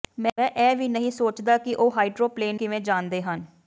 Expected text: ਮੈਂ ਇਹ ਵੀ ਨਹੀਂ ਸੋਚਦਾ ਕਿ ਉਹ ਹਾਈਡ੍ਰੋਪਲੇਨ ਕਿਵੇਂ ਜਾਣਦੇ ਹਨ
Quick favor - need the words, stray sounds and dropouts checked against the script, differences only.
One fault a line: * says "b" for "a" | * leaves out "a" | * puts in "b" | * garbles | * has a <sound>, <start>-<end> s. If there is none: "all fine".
all fine